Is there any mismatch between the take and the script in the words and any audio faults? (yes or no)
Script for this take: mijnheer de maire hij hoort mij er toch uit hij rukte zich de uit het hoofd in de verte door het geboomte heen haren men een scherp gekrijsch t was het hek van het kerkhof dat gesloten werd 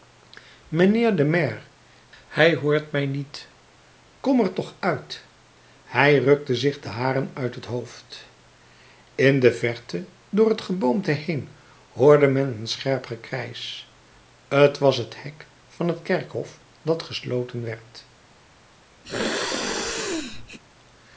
yes